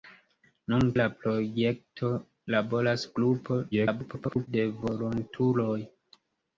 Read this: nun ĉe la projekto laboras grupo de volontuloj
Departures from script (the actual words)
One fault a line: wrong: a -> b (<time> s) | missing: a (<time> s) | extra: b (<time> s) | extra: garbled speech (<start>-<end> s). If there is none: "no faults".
missing: ĉe (0.8 s)
extra: garbled speech (3.7-4.5 s)